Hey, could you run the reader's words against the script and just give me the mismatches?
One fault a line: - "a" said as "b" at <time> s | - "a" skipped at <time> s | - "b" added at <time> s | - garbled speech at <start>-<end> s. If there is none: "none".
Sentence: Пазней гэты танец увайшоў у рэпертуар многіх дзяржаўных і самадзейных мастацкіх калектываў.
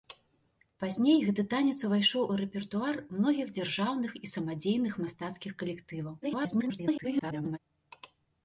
- garbled speech at 6.2-7.6 s